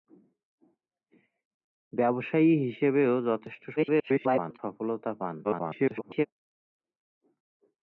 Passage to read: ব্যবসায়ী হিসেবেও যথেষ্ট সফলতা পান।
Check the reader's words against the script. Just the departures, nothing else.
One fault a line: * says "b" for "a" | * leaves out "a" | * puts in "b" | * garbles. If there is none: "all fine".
* garbles
* garbles